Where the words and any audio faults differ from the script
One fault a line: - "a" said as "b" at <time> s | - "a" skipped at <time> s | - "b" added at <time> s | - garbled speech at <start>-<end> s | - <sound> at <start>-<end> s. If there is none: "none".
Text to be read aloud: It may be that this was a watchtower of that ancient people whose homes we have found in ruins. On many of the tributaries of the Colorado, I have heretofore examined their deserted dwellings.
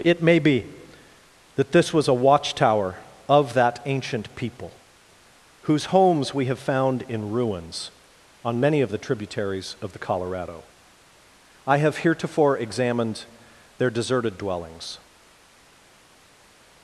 none